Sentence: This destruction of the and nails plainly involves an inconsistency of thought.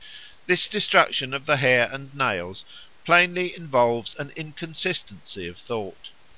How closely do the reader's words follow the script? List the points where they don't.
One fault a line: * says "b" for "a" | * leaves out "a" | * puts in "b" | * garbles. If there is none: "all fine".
* puts in "hair"